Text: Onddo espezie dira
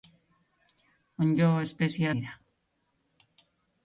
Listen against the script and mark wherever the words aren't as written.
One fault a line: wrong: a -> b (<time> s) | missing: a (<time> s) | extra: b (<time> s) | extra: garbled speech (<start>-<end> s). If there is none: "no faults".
no faults